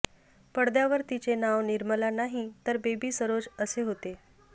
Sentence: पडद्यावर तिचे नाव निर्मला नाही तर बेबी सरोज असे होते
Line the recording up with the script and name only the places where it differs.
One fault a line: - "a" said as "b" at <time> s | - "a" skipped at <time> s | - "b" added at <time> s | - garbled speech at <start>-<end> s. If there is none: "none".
none